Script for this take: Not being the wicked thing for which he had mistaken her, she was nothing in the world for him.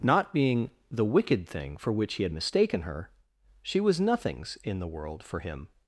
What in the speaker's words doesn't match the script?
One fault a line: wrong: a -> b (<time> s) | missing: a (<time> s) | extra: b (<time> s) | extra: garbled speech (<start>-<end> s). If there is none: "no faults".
wrong: nothing -> nothings (4.0 s)